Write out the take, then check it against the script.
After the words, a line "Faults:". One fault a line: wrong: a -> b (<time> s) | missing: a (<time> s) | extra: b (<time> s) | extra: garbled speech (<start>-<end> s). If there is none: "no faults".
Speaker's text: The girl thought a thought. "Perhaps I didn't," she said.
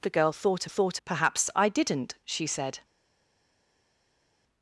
The girl thought a thought. "Perhaps I didn't," she said.
Faults:
no faults